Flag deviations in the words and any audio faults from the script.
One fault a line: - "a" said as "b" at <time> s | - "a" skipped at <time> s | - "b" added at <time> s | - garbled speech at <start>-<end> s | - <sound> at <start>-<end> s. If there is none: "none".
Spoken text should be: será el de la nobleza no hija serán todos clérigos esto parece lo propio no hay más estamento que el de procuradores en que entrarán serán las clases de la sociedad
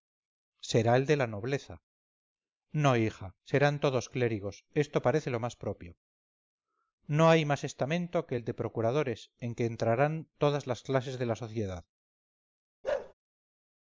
- "más" added at 5.4 s
- "serán" said as "todas" at 10.4 s
- bark at 12.8-13.1 s